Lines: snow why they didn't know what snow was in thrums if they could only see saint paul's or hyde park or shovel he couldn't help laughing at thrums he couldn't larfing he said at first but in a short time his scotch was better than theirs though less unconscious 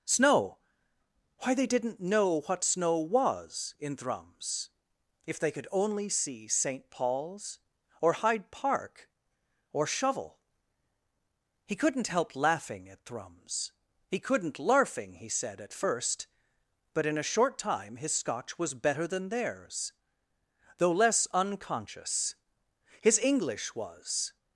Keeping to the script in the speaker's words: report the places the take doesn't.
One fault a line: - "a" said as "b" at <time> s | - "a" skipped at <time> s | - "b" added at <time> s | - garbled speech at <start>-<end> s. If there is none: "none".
- "his english was" added at 23.0 s